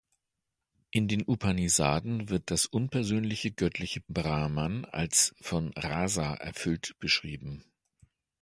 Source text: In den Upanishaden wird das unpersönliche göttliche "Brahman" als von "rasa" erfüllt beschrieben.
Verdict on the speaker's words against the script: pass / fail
pass